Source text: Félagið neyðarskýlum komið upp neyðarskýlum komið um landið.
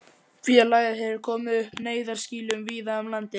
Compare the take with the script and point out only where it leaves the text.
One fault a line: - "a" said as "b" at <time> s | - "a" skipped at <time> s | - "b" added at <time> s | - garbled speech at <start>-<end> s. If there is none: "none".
- "neyðarskýlum" said as "hefur" at 1.0 s
- "komið" said as "víða" at 2.7 s